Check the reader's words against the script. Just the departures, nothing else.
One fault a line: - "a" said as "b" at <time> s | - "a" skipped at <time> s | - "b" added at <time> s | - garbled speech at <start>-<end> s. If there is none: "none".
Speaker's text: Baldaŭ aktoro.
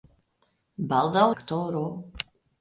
none